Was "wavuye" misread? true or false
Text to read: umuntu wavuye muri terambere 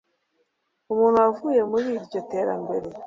false